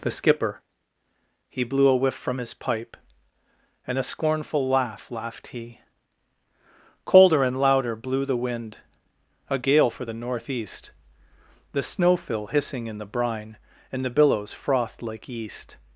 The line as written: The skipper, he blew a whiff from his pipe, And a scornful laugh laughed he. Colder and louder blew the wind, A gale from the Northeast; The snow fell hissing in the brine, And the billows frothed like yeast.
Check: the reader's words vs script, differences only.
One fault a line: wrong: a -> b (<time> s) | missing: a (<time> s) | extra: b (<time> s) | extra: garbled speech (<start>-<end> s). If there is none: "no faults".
wrong: from -> for (9.9 s)
wrong: fell -> fill (12.2 s)